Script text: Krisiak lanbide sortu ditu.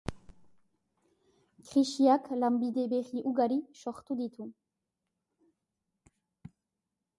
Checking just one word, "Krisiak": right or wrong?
right